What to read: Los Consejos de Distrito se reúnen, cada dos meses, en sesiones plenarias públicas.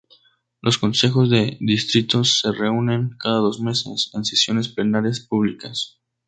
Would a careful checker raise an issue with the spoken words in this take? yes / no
no